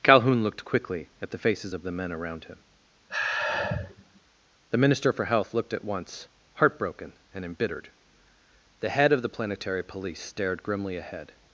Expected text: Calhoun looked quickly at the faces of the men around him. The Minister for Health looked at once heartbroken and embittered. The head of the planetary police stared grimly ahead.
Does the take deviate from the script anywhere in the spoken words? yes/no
no